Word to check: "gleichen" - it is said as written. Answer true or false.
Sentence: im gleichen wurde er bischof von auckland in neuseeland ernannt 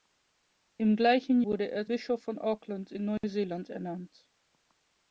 true